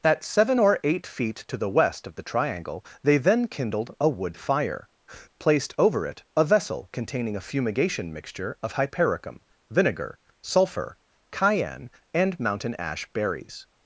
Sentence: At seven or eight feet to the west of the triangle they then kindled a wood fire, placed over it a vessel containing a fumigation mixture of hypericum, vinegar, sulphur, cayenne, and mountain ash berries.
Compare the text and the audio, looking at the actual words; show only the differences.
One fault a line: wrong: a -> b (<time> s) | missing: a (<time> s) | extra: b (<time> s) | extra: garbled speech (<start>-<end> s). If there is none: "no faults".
no faults